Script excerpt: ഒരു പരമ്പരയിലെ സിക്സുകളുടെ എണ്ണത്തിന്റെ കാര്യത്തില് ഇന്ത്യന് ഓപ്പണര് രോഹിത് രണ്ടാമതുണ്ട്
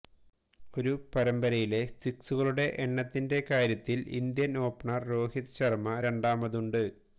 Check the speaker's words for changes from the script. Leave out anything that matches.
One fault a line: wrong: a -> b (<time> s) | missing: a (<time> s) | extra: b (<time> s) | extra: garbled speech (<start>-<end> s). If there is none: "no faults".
extra: ശര്മ (5.5 s)